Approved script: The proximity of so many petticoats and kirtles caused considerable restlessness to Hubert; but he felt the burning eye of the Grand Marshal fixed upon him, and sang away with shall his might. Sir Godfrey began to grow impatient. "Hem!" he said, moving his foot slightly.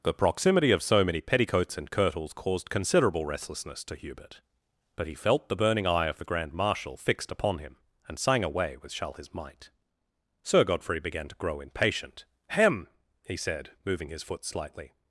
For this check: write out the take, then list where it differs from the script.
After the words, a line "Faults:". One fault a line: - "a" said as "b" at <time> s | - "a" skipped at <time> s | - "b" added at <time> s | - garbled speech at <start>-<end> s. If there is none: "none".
The proximity of so many petticoats and kirtles caused considerable restlessness to Hubert; but he felt the burning eye of the Grand Marshal fixed upon him, and sang away with shall his might. Sir Godfrey began to grow impatient. "Hem!" he said, moving his foot slightly.
Faults:
none